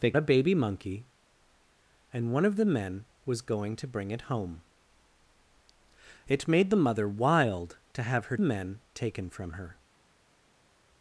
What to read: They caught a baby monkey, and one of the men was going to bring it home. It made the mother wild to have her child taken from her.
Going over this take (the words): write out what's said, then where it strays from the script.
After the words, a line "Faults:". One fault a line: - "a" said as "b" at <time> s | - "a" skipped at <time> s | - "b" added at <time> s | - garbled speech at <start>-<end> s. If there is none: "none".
They a baby monkey, and one of the men was going to bring it home. It made the mother wild to have her men taken from her.
Faults:
- "caught" skipped at 0.1 s
- "child" said as "men" at 8.4 s